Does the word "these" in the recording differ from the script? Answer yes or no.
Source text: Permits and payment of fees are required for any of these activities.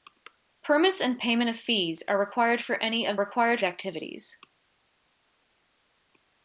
yes